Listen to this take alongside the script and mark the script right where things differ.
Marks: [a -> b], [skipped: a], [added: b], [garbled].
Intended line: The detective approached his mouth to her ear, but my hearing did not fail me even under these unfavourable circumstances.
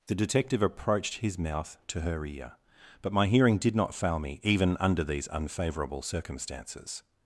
The detective approached his mouth to her ear, but my hearing did not fail me even under these unfavourable circumstances.